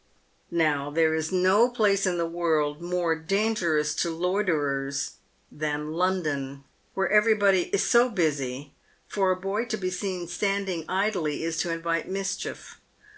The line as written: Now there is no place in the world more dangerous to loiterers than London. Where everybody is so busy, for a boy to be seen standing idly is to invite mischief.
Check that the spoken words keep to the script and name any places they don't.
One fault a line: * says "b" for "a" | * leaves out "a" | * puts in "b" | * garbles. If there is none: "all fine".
all fine